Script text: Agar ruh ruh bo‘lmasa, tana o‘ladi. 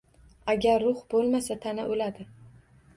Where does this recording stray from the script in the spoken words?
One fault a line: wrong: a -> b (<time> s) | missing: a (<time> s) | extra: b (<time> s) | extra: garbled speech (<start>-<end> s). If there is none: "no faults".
missing: ruh (1.1 s)